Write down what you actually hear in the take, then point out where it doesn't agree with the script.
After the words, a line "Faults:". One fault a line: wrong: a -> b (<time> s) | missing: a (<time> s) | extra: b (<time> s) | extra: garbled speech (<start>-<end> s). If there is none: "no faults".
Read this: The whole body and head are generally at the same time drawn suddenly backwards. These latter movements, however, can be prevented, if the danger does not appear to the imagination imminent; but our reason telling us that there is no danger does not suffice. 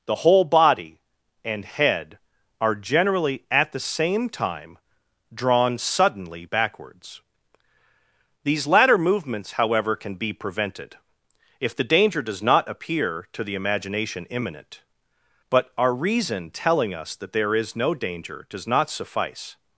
The whole body and head are generally at the same time drawn suddenly backwards. These latter movements, however, can be prevented, if the danger does not appear to the imagination imminent; but our reason telling us that there is no danger does not suffice.
Faults:
no faults